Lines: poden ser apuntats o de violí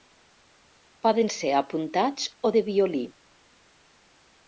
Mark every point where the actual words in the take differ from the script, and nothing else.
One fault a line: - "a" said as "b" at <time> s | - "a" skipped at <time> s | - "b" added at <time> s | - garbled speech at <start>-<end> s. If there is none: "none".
none